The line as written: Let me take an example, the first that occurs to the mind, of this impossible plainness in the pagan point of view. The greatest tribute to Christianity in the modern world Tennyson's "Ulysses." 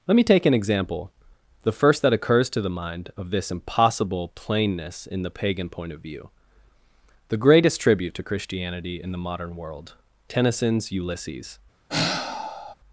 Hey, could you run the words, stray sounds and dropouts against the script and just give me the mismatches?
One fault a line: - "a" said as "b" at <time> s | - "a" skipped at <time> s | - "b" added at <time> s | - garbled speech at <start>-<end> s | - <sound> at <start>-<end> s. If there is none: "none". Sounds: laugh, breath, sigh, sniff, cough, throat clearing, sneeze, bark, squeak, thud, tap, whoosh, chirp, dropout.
- sigh at 11.9-12.7 s